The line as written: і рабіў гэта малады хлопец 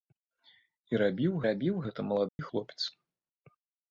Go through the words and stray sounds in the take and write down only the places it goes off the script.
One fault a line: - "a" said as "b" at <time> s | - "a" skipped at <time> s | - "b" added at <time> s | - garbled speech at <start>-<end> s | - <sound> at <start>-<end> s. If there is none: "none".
- "рабіў" added at 1.5 s
- dropout at 2.3-2.4 s